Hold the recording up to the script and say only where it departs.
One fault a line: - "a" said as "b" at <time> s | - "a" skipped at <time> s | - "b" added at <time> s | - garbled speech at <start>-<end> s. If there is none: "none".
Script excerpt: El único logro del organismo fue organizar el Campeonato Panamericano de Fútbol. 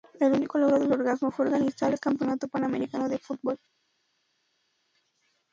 none